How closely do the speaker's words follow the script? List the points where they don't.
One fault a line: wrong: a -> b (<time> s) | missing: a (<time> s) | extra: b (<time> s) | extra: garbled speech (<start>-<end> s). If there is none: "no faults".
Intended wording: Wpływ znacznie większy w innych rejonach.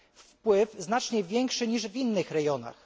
extra: niż (1.7 s)